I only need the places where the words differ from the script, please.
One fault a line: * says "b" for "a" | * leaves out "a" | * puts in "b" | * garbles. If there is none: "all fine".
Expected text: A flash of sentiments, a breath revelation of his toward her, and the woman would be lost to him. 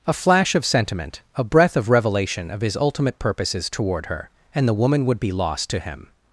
* says "sentiment" for "sentiments"
* puts in "of"
* puts in "ultimate purposes"